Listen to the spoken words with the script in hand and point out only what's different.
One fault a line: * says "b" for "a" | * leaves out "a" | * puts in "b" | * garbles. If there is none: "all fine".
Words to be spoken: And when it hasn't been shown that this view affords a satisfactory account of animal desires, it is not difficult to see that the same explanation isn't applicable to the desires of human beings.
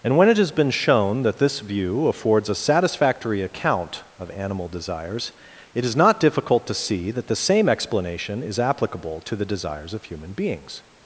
* says "has" for "hasn't"
* says "is" for "isn't"